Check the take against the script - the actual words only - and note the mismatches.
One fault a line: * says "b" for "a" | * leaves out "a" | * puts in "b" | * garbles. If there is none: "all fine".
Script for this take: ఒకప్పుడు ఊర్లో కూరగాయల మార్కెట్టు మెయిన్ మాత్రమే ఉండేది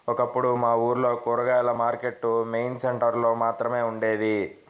* puts in "మా"
* puts in "సెంటర్ లో"